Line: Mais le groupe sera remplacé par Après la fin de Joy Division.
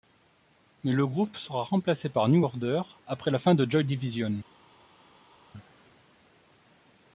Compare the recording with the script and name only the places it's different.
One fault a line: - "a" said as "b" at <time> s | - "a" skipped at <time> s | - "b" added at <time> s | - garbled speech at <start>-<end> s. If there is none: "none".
- "New Order" added at 2.3 s